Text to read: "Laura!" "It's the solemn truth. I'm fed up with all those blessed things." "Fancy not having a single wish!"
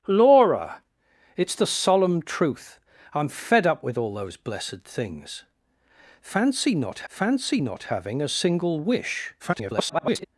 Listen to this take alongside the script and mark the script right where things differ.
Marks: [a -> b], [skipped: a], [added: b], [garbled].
"Laura!" "It's the solemn truth. I'm fed up with all those blessed things." "Fancy not [added: fancy not] having a single wish!" [garbled]